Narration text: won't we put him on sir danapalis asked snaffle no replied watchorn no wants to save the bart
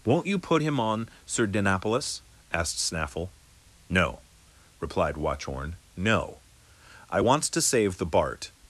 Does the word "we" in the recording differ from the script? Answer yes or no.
yes